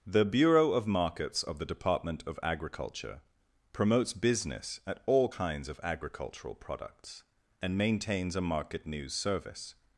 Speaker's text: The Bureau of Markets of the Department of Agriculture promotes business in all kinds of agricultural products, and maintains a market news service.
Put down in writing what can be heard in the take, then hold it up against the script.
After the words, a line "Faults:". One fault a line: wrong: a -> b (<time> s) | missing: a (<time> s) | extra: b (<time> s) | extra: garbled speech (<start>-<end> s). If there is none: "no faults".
The Bureau of Markets of the Department of Agriculture promotes business at all kinds of agricultural products, and maintains a market news service.
Faults:
wrong: in -> at (4.9 s)